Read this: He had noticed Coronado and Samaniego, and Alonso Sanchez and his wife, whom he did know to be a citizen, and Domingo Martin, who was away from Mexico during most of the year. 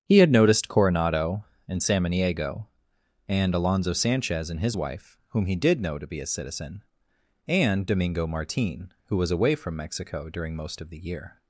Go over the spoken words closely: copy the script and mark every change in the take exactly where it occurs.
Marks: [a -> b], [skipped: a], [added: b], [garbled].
He had noticed Coronado and Samaniego, and Alonso Sanchez and his wife, whom he did know to be a citizen, and Domingo Martin, who was away from Mexico during most of the year.